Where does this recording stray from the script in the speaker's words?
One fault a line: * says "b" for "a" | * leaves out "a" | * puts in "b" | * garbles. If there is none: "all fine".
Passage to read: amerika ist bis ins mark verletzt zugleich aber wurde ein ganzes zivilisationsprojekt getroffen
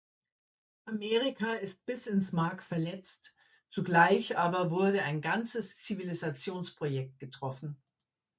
all fine